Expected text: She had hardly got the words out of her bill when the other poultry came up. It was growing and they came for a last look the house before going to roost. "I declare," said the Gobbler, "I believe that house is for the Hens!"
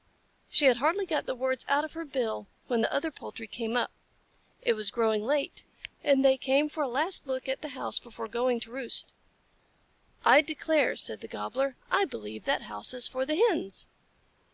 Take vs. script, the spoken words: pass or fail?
fail